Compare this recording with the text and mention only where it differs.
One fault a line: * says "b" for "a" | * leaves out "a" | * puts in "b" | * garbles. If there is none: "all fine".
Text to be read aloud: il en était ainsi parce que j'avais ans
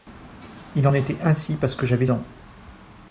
all fine